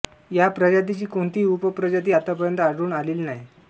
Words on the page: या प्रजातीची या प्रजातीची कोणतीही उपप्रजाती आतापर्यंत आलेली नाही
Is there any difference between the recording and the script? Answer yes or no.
yes